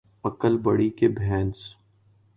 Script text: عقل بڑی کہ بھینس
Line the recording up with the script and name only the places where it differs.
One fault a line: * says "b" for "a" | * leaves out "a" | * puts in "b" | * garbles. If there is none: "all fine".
all fine